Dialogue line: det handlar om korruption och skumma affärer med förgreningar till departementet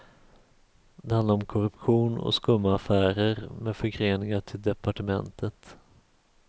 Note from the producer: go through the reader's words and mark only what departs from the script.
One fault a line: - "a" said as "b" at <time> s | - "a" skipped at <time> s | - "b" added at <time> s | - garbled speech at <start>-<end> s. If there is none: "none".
none